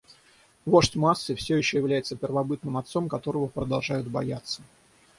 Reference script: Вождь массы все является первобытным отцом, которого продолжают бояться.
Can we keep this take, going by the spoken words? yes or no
no